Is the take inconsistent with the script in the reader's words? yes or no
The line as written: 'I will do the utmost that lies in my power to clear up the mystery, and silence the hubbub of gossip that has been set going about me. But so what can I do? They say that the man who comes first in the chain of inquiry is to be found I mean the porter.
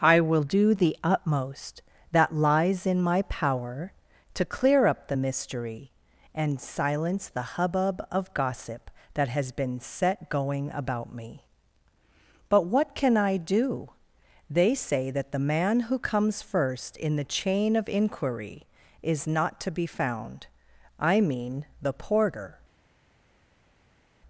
yes